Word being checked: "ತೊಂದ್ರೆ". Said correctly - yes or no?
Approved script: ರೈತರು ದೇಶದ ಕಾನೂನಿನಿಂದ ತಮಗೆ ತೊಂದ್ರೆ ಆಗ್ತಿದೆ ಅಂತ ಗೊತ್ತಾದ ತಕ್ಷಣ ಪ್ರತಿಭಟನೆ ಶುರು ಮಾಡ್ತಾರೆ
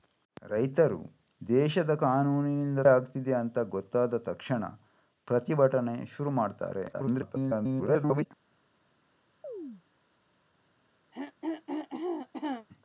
no